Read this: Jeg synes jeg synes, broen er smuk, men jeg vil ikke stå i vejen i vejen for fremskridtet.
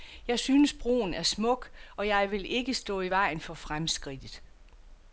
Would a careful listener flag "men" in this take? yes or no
yes